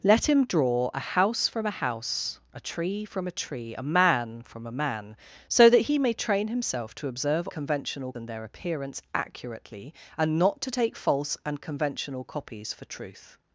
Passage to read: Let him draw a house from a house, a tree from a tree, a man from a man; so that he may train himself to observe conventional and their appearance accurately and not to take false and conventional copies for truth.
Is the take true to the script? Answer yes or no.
yes